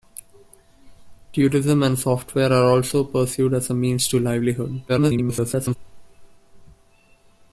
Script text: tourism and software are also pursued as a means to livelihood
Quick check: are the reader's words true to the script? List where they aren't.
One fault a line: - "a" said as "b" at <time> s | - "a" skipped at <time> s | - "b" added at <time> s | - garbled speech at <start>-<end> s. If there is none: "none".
- garbled speech at 4.9-5.8 s